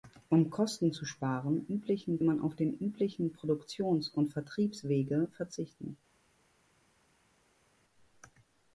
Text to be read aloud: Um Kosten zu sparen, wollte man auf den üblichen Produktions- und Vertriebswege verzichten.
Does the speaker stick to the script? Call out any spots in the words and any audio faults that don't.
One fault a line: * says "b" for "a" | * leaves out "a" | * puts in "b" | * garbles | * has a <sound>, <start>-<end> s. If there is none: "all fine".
* says "üblichen" for "wollte"